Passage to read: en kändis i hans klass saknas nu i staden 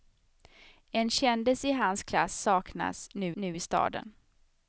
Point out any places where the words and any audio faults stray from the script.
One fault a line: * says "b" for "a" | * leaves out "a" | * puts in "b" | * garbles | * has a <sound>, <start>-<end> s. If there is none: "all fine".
* puts in "nu"